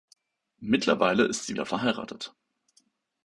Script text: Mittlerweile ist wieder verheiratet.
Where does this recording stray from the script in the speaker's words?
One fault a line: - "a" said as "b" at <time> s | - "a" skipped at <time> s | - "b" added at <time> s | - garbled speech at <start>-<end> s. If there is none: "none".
- "sie" added at 1.4 s